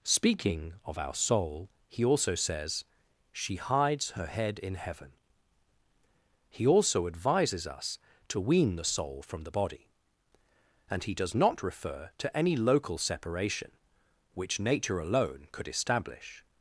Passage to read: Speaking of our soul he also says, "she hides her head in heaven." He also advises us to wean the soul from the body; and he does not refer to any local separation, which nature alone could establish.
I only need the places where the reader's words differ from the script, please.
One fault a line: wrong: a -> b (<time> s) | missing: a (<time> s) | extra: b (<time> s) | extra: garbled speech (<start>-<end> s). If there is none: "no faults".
no faults